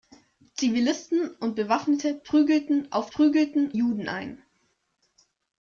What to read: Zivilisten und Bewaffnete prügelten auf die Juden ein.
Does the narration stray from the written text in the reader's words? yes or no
yes